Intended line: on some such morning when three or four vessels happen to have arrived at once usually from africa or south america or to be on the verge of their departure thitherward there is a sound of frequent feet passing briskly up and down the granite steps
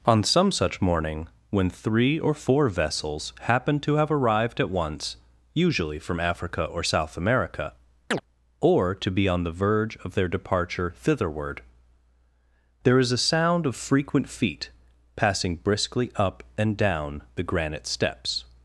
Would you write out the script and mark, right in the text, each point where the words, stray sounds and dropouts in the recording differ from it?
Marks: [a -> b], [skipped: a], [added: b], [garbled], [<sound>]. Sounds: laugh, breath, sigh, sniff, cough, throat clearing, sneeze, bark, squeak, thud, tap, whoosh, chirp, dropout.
on some such morning when three or four vessels happen to have arrived at once usually from africa or south america [chirp] or to be on the verge of their departure thitherward there is a sound of frequent feet passing briskly up and down the granite steps